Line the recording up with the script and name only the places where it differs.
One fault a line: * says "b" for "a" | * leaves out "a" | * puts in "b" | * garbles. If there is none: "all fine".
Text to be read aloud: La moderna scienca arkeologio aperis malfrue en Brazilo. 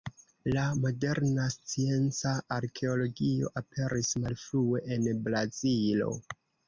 all fine